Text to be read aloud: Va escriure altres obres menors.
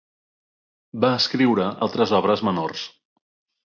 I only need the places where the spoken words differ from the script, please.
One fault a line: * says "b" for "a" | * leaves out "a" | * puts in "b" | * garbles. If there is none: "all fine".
all fine